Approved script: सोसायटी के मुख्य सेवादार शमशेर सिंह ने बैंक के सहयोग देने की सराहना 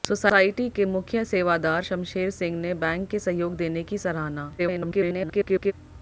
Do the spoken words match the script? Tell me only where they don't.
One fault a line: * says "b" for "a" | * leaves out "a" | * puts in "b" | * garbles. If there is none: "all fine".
* garbles